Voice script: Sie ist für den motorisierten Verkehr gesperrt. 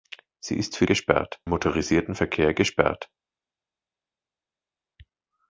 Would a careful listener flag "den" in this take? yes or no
yes